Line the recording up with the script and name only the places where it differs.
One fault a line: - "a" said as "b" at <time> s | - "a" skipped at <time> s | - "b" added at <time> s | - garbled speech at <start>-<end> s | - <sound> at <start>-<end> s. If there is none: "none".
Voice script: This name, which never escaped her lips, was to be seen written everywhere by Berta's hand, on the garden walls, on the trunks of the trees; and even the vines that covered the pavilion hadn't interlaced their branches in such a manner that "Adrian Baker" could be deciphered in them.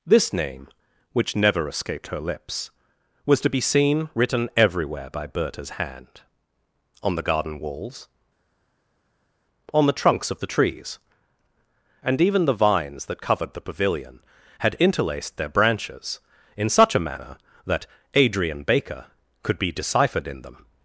- "hadn't" said as "had" at 14.6 s